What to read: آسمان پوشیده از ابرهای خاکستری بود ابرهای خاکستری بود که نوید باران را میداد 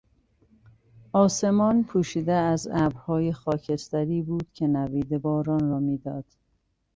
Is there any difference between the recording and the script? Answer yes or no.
yes